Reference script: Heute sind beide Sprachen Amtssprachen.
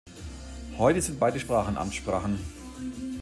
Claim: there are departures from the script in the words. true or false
false